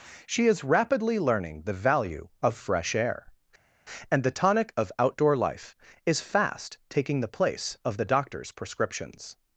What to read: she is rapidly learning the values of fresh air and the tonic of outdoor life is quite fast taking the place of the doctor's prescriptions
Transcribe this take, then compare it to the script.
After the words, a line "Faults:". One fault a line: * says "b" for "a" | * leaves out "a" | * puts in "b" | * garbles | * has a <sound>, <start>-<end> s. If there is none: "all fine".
she is rapidly learning the value of fresh air and the tonic of outdoor life is fast taking the place of the doctor's prescriptions
Faults:
* says "value" for "values"
* leaves out "quite"